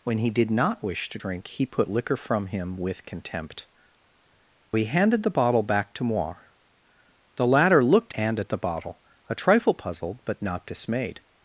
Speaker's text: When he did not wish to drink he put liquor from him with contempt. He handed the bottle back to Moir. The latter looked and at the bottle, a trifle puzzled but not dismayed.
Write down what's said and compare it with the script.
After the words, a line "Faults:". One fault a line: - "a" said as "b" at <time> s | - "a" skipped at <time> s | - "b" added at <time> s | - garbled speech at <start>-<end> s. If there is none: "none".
When he did not wish to drink he put liquor from him with contempt. He handed the bottle back to Moir. The latter looked and at the bottle, a trifle puzzled but not dismayed.
Faults:
none